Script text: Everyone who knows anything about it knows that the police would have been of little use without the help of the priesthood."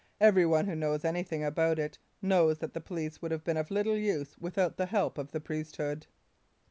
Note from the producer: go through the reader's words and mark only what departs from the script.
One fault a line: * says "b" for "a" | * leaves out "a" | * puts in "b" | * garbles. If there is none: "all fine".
all fine